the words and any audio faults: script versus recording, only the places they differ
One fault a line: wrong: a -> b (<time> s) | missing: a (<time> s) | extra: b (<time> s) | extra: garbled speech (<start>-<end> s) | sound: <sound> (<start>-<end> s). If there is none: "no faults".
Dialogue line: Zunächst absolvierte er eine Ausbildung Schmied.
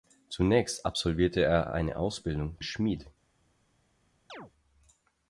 sound: chirp (4.3-4.5 s)